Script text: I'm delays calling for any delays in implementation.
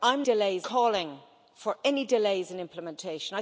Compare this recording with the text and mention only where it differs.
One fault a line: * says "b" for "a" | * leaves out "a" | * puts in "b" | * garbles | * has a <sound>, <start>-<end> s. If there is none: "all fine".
all fine